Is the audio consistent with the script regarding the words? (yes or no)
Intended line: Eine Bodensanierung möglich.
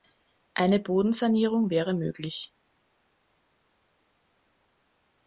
no